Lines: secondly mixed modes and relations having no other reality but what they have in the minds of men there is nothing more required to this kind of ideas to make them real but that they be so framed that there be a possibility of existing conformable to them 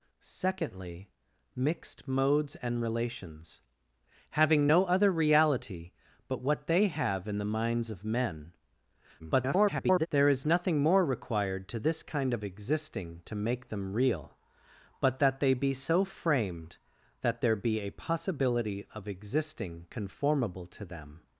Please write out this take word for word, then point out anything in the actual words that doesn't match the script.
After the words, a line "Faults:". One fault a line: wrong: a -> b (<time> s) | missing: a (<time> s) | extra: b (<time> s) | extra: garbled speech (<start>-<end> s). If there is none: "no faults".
secondly mixed modes and relations having no other reality but what they have in the minds of men [garbled] there is nothing more required to this kind of existing to make them real but that they be so framed that there be a possibility of existing conformable to them
Faults:
extra: garbled speech (9.2-10.1 s)
wrong: ideas -> existing (12.4 s)